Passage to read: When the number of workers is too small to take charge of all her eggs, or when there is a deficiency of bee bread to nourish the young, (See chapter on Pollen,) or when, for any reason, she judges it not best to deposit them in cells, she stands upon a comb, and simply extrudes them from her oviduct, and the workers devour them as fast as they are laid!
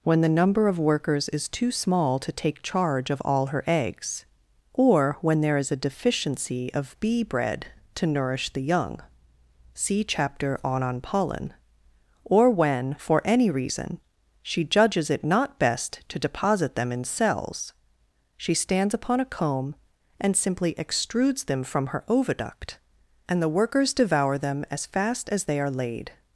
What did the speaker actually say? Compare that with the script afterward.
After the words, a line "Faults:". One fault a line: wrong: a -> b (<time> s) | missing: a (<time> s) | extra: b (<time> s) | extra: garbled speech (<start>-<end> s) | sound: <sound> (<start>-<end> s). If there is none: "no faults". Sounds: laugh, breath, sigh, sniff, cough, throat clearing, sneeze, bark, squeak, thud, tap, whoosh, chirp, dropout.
When the number of workers is too small to take charge of all her eggs, or when there is a deficiency of bee bread to nourish the young, (See chapter on on Pollen,) or when, for any reason, she judges it not best to deposit them in cells, she stands upon a comb, and simply extrudes them from her oviduct, and the workers devour them as fast as they are laid!
Faults:
extra: on (10.8 s)